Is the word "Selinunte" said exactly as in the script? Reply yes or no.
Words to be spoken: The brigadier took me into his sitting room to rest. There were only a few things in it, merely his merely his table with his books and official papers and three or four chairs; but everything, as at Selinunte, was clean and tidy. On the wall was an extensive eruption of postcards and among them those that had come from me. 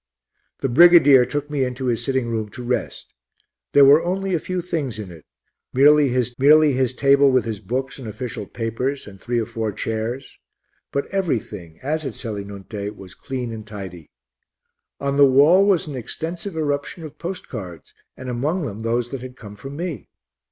yes